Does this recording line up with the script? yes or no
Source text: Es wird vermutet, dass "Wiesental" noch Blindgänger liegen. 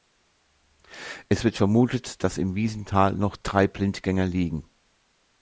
no